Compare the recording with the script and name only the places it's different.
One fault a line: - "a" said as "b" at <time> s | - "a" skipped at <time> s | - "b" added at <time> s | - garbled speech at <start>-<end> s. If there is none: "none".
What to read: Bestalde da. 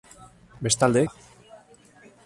none